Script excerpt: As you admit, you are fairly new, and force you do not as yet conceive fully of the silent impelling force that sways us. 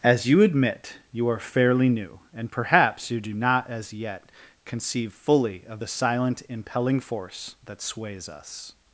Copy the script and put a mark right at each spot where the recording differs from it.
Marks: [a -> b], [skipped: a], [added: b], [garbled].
As you admit, you are fairly new, and [force -> perhaps] you do not as yet conceive fully of the silent impelling force that sways us.